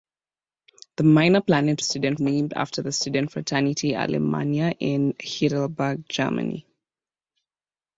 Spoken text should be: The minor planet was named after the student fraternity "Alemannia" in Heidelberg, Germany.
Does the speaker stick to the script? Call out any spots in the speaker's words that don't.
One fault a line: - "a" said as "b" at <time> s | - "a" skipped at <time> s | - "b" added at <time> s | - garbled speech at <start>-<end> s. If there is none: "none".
- "was" said as "student" at 1.8 s